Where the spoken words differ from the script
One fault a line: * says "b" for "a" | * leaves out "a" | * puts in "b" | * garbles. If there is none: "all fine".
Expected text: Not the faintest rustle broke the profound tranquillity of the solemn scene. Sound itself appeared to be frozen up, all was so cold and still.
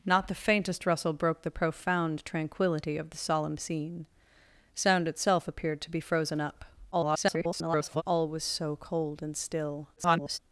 * garbles
* garbles